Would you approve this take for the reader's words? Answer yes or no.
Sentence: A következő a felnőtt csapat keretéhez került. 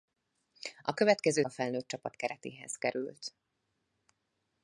yes